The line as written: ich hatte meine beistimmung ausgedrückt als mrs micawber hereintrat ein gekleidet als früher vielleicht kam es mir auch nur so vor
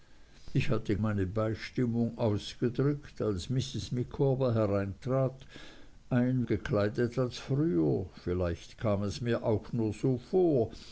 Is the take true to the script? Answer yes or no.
yes